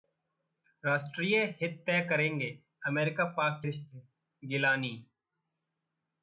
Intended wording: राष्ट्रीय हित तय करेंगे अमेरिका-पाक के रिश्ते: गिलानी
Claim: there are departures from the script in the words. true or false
true